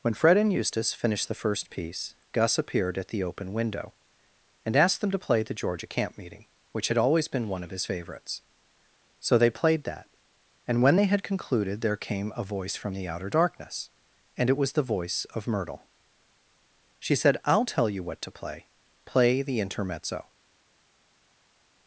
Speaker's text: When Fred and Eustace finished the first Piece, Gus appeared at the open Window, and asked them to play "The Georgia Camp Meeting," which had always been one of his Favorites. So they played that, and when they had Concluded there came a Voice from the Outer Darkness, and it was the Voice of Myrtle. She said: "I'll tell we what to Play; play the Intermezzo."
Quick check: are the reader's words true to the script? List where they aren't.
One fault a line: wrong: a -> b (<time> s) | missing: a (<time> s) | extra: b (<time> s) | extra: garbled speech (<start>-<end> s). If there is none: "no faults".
wrong: we -> you (17.9 s)